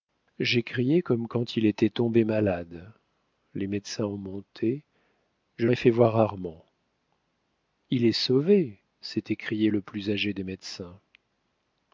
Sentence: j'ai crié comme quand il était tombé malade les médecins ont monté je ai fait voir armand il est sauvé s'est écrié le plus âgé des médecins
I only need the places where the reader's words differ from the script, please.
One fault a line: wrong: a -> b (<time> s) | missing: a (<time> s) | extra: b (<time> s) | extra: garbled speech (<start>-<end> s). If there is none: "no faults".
no faults